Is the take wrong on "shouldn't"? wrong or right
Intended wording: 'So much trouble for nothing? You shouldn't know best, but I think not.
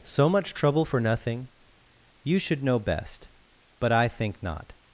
wrong